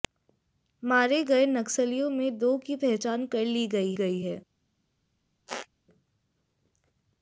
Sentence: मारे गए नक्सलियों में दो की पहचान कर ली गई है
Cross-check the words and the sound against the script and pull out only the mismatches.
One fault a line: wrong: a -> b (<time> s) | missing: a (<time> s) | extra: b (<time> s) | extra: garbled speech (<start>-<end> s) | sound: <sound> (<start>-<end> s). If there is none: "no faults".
extra: गई (3.9 s)
sound: squeak (5.5-5.7 s)